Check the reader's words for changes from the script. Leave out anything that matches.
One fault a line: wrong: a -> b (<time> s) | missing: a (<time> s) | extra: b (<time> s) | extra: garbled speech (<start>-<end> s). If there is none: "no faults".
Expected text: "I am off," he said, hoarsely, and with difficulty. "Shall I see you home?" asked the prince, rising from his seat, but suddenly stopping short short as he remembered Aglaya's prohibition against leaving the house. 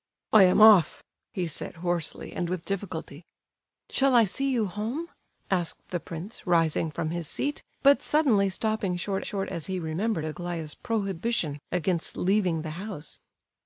no faults